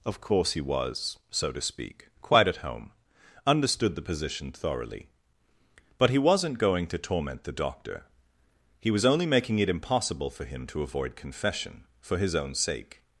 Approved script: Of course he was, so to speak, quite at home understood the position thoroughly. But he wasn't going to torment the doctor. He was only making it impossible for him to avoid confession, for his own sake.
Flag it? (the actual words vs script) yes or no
no